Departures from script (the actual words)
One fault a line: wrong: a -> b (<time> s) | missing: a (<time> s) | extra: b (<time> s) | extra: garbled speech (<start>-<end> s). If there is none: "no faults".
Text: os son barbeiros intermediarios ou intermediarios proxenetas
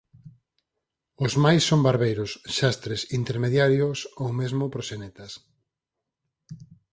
extra: máis (1.4 s)
extra: xastres (2.6 s)
wrong: intermediarios -> mesmo (4.4 s)